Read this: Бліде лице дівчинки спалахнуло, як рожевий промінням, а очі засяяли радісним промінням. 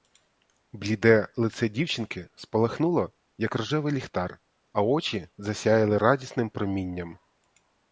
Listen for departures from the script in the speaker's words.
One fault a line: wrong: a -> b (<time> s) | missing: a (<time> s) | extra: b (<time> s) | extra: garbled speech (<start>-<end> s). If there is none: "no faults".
wrong: промінням -> ліхтар (3.9 s)